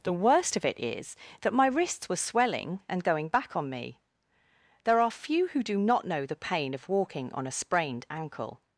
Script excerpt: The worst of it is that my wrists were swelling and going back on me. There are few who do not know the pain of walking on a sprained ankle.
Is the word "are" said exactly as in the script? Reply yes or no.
yes